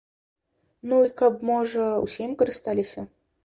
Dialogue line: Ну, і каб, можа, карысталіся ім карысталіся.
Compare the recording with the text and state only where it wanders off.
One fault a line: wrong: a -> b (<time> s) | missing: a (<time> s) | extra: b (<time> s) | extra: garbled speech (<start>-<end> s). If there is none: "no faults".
wrong: карысталіся -> усе (2.1 s)